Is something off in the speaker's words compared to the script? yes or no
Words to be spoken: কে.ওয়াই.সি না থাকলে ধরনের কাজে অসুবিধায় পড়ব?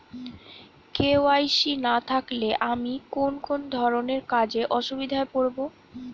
yes